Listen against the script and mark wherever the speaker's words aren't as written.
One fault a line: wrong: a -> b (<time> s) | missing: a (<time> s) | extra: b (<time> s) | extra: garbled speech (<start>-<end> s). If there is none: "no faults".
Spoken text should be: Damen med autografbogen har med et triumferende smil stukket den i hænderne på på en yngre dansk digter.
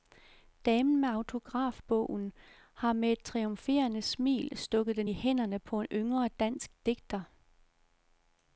missing: på (5.8 s)